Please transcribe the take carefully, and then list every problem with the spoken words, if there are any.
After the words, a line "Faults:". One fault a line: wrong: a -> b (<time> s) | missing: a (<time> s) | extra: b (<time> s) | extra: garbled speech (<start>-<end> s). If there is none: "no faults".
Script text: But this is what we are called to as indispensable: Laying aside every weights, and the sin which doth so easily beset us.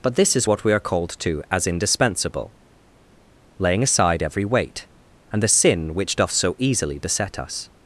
But this is what we are called to as indispensable: Laying aside every weight, and the sin which doth so easily beset us.
Faults:
wrong: weights -> weight (4.4 s)